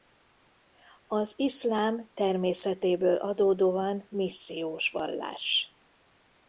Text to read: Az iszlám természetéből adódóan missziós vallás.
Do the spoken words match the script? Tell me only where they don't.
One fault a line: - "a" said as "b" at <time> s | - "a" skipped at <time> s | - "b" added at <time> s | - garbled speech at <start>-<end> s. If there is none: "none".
none